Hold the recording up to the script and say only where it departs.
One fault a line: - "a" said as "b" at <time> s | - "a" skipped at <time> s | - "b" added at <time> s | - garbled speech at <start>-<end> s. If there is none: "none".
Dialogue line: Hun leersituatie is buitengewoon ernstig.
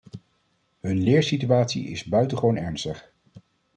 none